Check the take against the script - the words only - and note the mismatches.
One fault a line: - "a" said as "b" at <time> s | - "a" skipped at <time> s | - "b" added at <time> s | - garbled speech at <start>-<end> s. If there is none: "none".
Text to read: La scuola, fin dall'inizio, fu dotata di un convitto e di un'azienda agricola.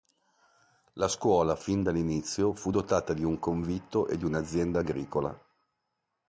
none